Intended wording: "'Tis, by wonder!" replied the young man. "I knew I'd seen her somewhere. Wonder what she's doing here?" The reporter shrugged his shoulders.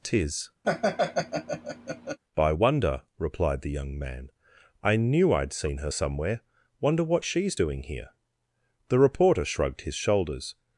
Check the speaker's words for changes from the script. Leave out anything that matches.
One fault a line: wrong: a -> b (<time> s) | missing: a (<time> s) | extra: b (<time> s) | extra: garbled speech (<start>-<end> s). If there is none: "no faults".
no faults